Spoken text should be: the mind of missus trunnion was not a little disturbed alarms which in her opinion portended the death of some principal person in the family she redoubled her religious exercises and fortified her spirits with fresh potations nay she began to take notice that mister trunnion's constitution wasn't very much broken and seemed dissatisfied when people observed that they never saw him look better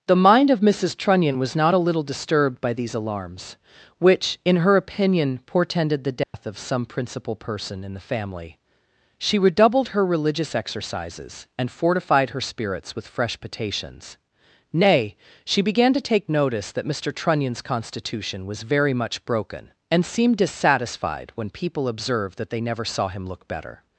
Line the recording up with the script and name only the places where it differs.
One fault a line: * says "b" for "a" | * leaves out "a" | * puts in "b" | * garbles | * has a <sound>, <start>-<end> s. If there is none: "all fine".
* puts in "by these"
* has a dropout, 6.2-6.3 s
* says "was" for "wasn't"